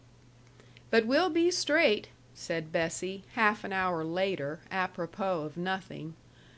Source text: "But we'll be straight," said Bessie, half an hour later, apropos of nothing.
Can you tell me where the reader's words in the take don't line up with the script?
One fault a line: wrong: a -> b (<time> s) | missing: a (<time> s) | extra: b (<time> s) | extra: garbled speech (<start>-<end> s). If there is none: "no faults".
no faults